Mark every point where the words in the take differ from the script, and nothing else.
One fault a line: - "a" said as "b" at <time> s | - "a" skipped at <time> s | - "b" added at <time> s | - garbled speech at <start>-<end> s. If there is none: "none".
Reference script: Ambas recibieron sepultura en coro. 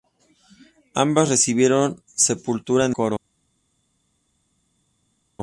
none